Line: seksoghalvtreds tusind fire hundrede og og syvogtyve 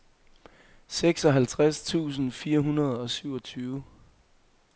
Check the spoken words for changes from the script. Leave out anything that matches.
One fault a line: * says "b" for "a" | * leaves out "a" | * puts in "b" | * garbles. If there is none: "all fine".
* leaves out "og"